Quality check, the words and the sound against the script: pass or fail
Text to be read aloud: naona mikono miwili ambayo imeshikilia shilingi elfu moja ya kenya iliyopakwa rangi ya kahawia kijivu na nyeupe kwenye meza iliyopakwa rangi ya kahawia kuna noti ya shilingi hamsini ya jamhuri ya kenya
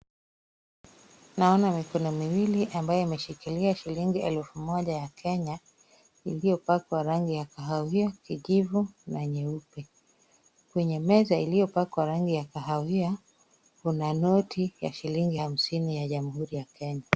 pass